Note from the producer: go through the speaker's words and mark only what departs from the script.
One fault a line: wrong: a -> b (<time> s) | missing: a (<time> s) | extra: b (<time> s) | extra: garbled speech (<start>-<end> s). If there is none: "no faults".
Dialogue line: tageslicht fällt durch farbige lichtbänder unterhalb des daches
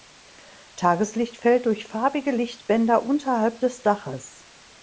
no faults